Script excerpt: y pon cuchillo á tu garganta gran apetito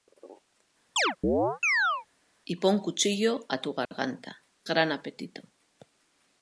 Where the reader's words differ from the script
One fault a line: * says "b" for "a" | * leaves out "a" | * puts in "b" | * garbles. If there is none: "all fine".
all fine